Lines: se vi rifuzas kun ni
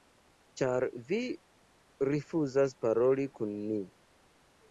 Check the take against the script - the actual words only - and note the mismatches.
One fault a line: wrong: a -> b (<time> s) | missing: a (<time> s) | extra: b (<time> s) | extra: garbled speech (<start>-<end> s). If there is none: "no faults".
wrong: se -> ĉar (0.6 s)
extra: paroli (2.9 s)